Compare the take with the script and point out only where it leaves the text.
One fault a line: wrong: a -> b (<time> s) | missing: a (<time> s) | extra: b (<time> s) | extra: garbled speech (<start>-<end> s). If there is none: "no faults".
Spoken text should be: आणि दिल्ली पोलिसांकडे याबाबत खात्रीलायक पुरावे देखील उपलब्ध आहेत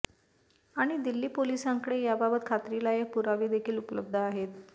no faults